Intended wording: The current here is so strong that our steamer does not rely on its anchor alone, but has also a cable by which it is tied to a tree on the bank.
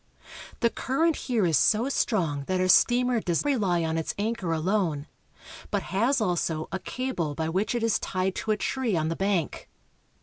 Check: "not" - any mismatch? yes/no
yes